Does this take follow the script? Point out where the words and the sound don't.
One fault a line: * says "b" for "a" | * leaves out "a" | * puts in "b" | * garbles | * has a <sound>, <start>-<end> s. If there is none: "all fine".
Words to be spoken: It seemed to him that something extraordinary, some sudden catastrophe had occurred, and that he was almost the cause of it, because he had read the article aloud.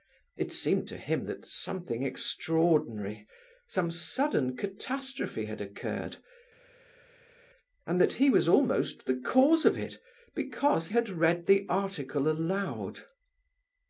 * leaves out "he"